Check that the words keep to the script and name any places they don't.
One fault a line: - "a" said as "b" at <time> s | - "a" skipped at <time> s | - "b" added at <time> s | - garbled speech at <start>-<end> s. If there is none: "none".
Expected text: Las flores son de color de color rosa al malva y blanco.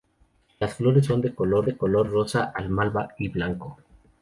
none